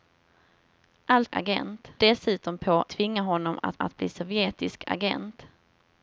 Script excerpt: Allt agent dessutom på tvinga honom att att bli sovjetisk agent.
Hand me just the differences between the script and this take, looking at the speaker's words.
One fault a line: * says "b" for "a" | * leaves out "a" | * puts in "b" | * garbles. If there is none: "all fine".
all fine